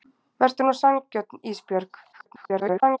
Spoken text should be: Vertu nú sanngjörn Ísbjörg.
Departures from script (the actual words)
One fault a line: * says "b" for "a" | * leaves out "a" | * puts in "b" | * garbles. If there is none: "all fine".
* garbles